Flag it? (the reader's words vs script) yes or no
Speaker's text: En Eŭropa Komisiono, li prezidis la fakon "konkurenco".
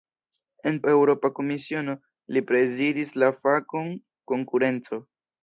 no